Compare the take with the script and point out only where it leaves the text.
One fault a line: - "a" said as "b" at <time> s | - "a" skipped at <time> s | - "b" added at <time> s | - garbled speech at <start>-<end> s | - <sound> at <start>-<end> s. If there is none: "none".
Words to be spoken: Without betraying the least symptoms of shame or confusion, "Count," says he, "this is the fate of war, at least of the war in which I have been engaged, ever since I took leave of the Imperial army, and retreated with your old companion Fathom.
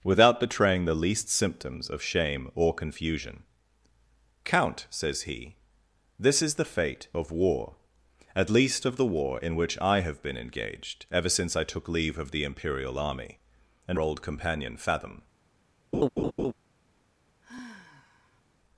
- "retreated with your" skipped at 14.0 s
- laugh at 15.9-16.5 s
- sigh at 17.4-18.4 s